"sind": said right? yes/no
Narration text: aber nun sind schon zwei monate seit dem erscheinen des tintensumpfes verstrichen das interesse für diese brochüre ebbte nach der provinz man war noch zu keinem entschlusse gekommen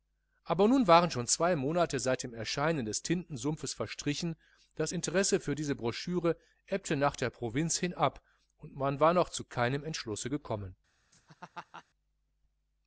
no